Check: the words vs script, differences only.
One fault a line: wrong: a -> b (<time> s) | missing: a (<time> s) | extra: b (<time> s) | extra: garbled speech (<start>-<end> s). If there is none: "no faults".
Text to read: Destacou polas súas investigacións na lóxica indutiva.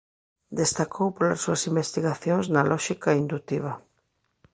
no faults